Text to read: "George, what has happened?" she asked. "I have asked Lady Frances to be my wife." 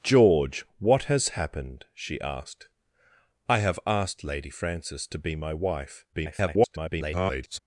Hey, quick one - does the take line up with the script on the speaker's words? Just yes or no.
no